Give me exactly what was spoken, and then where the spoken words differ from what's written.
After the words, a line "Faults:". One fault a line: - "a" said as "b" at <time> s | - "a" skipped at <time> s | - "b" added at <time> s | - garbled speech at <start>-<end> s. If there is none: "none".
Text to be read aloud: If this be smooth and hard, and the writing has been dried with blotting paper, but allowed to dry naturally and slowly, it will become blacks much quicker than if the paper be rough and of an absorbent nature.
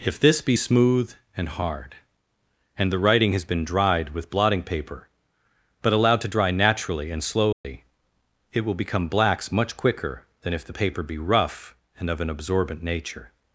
If this be smooth and hard, and the writing has been dried with blotting paper, but allowed to dry naturally and slowly, it will become blacks much quicker than if the paper be rough and of an absorbent nature.
Faults:
none